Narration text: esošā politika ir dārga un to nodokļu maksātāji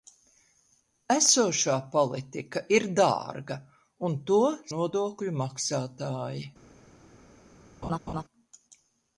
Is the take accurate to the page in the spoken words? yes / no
yes